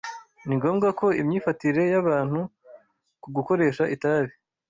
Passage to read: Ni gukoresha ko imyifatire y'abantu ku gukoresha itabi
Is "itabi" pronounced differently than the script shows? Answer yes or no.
no